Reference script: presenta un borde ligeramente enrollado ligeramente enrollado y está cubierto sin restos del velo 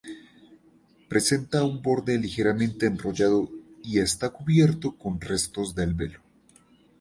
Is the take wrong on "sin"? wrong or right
wrong